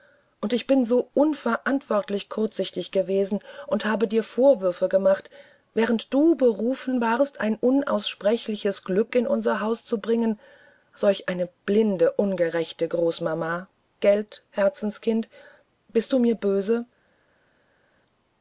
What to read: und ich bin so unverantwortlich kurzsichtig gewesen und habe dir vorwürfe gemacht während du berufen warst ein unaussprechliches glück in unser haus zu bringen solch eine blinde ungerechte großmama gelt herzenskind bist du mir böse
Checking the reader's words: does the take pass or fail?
pass